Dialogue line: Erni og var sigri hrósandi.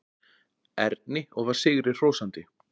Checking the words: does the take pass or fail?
pass